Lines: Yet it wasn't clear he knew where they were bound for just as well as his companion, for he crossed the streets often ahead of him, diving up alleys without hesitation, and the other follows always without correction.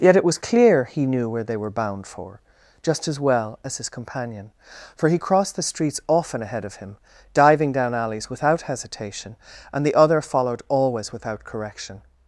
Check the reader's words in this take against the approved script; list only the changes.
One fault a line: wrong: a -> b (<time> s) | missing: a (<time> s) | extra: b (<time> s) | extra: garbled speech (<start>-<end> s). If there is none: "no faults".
wrong: wasn't -> was (0.2 s)
wrong: up -> down (7.7 s)
wrong: follows -> followed (10.2 s)